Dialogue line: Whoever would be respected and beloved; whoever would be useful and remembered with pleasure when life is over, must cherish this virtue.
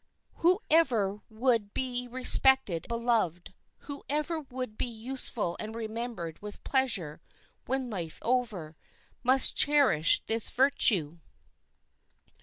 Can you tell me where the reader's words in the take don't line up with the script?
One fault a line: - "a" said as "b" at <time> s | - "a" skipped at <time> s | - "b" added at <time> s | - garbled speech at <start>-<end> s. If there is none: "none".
- "and" skipped at 2.9 s
- "is" skipped at 8.2 s